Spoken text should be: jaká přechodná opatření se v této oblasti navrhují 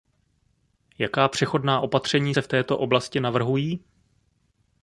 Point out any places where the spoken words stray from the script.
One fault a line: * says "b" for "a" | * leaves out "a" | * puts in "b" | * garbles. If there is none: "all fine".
all fine